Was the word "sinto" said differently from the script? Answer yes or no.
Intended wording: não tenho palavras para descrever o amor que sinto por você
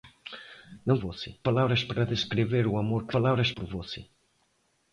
yes